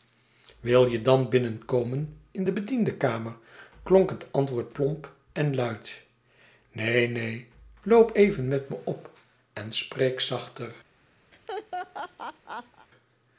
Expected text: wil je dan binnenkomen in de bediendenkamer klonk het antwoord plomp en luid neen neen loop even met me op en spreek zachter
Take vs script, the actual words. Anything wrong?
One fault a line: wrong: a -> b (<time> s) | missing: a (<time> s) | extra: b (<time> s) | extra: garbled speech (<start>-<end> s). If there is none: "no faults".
no faults